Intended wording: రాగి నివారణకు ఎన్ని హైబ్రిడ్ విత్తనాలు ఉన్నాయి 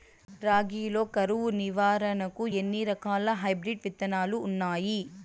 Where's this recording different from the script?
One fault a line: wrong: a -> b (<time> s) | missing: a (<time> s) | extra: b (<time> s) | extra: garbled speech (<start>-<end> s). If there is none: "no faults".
extra: లో కరువు (0.9 s)
extra: రకాల (2.9 s)